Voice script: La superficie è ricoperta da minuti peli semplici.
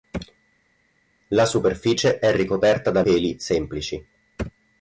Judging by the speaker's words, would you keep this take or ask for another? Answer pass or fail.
fail